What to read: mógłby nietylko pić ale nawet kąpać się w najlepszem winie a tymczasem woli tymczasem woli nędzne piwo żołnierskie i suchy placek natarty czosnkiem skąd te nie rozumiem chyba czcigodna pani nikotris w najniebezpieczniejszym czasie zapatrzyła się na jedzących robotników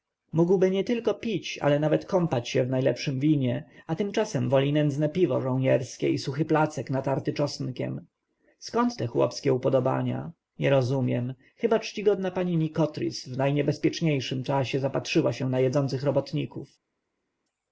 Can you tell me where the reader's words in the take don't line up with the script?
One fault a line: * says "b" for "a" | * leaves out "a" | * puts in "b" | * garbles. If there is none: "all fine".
* leaves out "tymczasem woli"
* puts in "chłopskie upodobania"